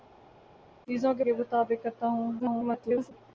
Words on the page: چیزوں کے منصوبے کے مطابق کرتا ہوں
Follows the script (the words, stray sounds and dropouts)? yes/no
no